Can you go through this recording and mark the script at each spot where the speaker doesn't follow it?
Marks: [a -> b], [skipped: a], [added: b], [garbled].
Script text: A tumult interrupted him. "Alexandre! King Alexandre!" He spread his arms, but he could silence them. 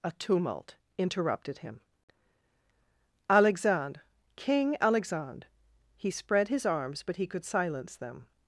A tumult interrupted him. "Alexandre! King Alexandre!" He spread his arms, but he could silence them.